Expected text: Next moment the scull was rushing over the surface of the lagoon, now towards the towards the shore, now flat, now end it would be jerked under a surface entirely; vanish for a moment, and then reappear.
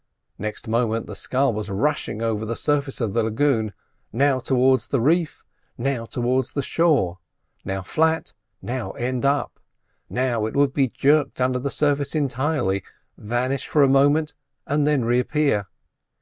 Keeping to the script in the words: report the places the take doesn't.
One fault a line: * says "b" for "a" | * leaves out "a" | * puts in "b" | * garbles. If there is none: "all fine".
* puts in "reef now"
* puts in "up Now"
* says "the" for "a"